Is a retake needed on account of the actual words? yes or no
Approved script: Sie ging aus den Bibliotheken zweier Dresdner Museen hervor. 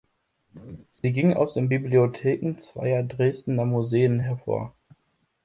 no